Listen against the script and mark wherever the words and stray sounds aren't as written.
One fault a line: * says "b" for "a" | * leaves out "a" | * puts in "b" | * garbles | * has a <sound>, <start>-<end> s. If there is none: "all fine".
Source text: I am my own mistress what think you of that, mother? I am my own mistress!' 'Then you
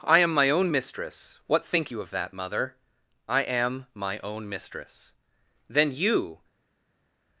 all fine